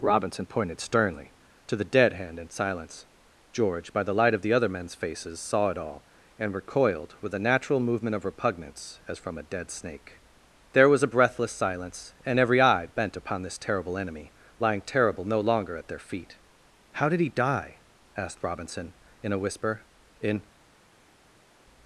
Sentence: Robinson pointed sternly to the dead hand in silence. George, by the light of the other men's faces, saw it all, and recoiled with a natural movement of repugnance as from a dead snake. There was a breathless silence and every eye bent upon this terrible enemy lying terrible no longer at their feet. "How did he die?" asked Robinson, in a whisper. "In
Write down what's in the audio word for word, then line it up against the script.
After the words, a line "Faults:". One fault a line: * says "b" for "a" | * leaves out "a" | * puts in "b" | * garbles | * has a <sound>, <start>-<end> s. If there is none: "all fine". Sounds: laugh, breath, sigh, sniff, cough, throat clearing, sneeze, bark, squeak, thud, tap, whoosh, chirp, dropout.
Robinson pointed sternly to the dead hand in silence. George, by the light of the other men's faces, saw it all, and recoiled with a natural movement of repugnance as from a dead snake. There was a breathless silence and every eye bent upon this terrible enemy lying terrible no longer at their feet. "How did he die?" asked Robinson, in a whisper. "In
Faults:
all fine